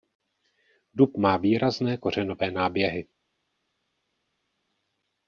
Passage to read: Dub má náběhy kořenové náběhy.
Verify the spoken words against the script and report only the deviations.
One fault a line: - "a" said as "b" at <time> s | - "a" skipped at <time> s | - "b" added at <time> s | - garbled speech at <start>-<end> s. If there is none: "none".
- "náběhy" said as "výrazné" at 1.4 s